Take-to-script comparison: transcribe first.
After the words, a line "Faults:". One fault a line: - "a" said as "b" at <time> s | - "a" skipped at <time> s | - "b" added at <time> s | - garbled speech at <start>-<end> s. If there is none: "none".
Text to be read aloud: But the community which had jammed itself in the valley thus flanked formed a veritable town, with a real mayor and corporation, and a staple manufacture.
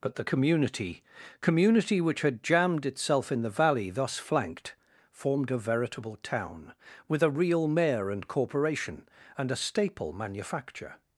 But the community community which had jammed itself in the valley thus flanked formed a veritable town, with a real mayor and corporation, and a staple manufacture.
Faults:
- "community" added at 1.4 s